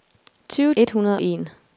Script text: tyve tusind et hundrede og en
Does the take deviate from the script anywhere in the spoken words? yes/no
yes